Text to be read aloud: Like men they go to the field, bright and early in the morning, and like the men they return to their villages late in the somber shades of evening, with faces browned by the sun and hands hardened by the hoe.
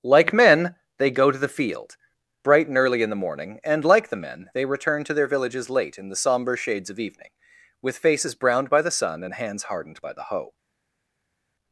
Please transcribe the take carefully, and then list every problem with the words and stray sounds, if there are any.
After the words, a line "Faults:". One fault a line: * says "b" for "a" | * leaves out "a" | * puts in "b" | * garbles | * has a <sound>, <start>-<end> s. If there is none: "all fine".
Like men they go to the field, bright and early in the morning, and like the men they return to their villages late in the somber shades of evening, with faces browned by the sun and hands hardened by the hoe.
Faults:
all fine